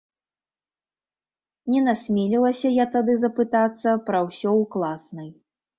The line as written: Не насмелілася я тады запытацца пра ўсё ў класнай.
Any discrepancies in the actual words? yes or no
no